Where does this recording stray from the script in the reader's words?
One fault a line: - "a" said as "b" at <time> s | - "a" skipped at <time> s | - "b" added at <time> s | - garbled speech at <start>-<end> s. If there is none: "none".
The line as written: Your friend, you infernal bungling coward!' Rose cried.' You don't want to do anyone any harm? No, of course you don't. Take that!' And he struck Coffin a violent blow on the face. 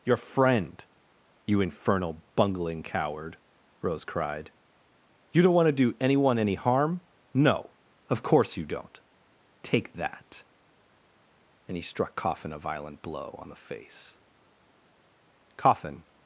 - "Coffin" added at 15.6 s